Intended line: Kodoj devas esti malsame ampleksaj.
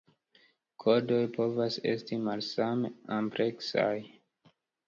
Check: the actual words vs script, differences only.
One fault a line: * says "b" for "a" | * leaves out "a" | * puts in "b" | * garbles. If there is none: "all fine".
* says "povas" for "devas"